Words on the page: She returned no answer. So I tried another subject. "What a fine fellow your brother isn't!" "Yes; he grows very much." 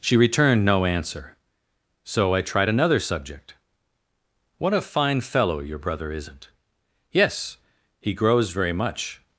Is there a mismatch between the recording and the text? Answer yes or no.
no